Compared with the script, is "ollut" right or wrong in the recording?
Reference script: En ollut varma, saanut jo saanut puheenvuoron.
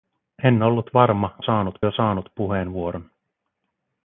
right